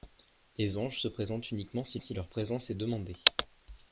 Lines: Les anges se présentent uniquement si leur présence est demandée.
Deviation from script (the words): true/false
true